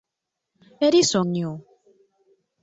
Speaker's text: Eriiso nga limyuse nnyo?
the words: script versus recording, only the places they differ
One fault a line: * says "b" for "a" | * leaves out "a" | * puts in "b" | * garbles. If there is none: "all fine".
* leaves out "nga limyuse"